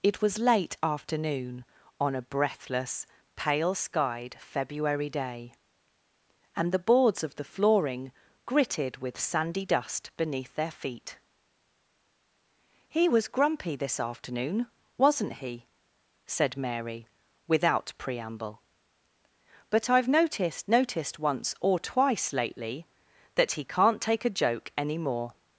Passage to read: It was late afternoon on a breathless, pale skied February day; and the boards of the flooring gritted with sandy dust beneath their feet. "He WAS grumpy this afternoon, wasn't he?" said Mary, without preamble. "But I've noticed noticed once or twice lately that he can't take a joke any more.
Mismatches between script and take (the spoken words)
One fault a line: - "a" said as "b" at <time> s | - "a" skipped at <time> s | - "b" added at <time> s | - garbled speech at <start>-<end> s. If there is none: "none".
none